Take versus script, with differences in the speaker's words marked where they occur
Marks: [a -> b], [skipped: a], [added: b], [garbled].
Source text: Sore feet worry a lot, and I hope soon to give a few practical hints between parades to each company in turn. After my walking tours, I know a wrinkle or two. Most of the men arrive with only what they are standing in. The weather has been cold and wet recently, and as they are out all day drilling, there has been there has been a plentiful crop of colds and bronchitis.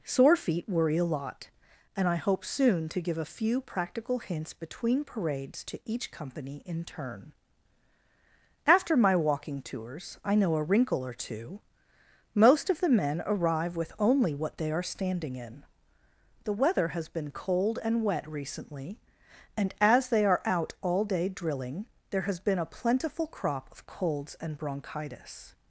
Sore feet worry a lot, and I hope soon to give a few practical hints between parades to each company in turn. After my walking tours, I know a wrinkle or two. Most of the men arrive with only what they are standing in. The weather has been cold and wet recently, and as they are out all day drilling, there has been [skipped: there has been] a plentiful crop of colds and bronchitis.